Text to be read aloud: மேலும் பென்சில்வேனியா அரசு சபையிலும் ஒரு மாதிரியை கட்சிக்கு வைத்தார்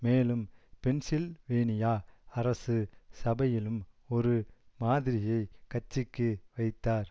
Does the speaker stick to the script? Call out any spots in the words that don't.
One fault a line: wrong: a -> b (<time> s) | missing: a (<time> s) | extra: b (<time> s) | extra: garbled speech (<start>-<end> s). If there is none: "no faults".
no faults